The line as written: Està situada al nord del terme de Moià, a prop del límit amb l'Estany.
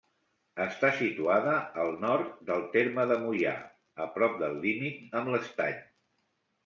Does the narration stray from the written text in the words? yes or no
no